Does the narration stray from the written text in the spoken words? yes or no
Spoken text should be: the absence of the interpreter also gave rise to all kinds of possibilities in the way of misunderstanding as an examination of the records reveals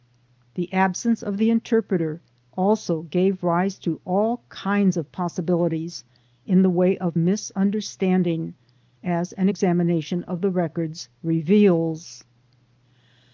no